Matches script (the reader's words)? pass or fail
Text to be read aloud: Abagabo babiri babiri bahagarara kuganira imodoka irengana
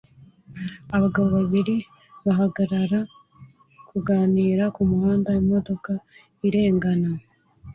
fail